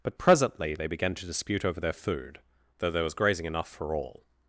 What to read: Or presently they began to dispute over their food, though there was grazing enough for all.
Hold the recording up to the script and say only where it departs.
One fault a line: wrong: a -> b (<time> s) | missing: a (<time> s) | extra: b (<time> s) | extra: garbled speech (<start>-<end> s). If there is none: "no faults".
wrong: Or -> But (0.0 s)